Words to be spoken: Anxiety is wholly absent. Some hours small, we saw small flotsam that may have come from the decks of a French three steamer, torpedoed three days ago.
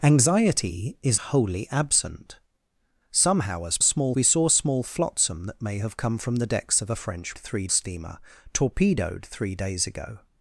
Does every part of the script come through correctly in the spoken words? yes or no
yes